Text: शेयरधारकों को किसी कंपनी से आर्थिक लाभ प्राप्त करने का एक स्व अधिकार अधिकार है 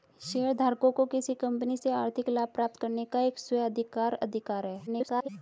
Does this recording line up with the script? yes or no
no